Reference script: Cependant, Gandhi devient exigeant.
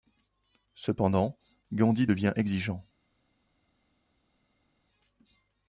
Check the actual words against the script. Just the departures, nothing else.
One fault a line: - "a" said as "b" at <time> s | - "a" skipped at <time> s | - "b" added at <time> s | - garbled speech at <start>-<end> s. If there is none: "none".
none